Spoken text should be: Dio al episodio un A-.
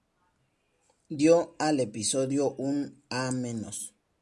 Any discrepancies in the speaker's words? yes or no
no